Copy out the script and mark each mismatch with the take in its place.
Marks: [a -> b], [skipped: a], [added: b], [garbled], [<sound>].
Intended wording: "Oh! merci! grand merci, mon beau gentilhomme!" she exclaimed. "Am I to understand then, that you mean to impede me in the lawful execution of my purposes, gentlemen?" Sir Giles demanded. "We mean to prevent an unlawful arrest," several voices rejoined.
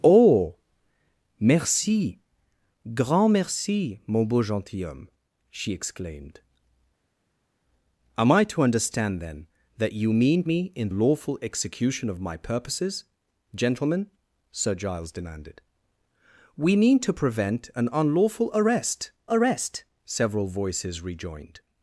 "Oh! merci! grand merci, mon beau gentilhomme!" she exclaimed. "Am I to understand then, that you mean [skipped: to impede] me in [skipped: the] lawful execution of my purposes, gentlemen?" Sir Giles demanded. "We mean to prevent an unlawful arrest," [added: arrest] several voices rejoined.